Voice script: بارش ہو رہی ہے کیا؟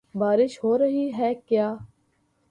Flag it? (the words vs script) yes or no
no